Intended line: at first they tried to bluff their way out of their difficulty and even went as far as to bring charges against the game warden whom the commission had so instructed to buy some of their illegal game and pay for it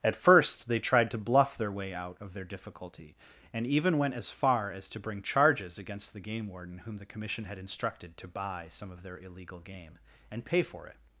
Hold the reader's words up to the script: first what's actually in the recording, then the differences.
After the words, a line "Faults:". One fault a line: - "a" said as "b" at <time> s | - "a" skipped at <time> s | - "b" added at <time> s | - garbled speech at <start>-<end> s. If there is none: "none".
at first they tried to bluff their way out of their difficulty and even went as far as to bring charges against the game warden whom the commission had instructed to buy some of their illegal game and pay for it
Faults:
- "so" skipped at 7.6 s